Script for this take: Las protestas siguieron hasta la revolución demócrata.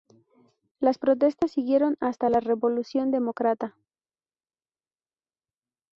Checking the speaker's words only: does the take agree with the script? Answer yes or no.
yes